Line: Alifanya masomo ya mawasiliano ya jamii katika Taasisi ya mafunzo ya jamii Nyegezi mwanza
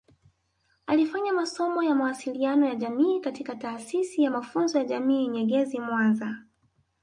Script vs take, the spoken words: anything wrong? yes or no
no